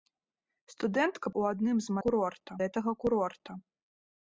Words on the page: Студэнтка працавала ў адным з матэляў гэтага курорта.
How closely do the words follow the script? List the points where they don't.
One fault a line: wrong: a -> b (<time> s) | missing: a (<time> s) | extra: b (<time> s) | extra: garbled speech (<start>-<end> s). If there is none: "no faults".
missing: працавала (1.3 s)
wrong: матэляў -> курорта (2.0 s)